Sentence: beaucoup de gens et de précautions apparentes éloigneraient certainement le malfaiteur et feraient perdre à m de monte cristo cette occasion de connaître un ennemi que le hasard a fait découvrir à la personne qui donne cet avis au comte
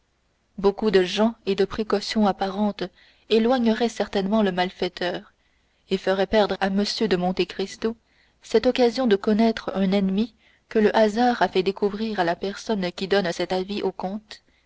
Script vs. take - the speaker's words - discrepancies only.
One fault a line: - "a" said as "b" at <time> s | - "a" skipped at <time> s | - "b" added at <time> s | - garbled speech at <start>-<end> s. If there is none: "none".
none